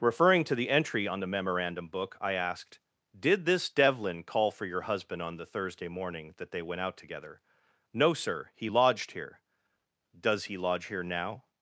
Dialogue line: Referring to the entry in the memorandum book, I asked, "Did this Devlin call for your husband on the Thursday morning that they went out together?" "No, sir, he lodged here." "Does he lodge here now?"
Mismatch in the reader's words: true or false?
true